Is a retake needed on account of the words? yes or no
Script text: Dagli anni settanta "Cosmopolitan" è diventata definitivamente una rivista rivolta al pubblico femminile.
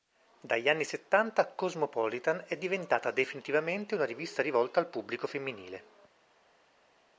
no